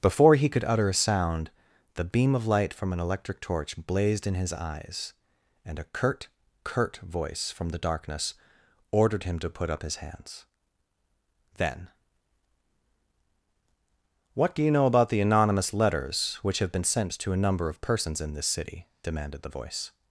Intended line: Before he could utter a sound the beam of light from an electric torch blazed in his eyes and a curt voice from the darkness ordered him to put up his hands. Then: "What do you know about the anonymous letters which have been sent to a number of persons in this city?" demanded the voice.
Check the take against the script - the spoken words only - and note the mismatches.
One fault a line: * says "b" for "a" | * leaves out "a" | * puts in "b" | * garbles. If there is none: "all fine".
* puts in "curt"